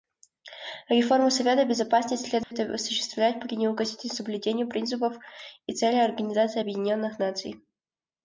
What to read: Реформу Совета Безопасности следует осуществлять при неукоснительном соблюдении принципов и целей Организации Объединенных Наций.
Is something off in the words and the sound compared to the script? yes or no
yes